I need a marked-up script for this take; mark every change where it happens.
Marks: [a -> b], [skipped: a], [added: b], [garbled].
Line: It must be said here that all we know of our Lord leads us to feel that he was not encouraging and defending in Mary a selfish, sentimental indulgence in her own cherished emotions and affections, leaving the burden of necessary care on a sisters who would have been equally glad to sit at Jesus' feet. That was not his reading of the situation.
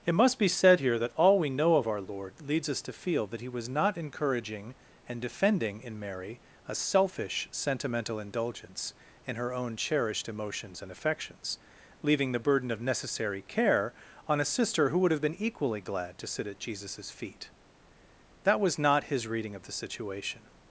It must be said here that all we know of our Lord leads us to feel that he was not encouraging and defending in Mary a selfish, sentimental indulgence in her own cherished emotions and affections, leaving the burden of necessary care on a [sisters -> sister] who would have been equally glad to sit at Jesus' feet. That was not his reading of the situation.